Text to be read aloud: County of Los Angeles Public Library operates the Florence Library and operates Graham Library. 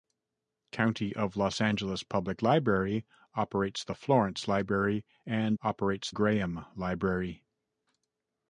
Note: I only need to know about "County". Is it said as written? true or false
true